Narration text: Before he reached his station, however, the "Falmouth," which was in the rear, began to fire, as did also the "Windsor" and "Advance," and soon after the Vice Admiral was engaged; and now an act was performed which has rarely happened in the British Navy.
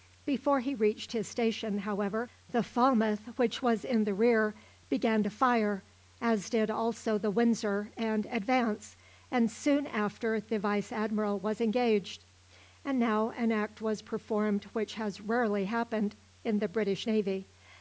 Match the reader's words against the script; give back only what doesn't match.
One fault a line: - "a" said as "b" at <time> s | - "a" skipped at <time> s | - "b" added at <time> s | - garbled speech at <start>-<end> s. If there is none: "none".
none